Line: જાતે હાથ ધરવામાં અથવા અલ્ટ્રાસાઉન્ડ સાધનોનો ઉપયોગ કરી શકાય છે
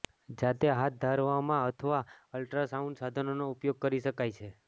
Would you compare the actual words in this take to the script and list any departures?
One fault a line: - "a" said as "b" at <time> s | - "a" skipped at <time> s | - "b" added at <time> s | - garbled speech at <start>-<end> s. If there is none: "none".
none